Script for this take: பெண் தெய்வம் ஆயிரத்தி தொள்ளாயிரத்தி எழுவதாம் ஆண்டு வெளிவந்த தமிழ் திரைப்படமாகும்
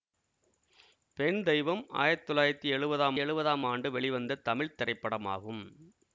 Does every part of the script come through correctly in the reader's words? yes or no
no